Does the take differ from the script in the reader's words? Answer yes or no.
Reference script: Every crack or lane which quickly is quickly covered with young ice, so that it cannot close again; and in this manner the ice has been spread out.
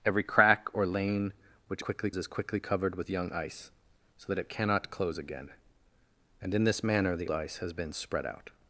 no